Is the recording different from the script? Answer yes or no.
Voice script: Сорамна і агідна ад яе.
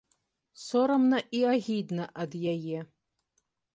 no